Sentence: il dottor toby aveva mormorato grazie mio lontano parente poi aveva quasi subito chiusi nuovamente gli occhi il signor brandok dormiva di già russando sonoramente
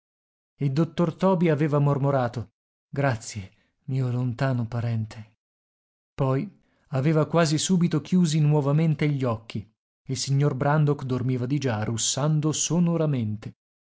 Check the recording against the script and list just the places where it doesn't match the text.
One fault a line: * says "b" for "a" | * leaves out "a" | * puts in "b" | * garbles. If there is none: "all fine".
all fine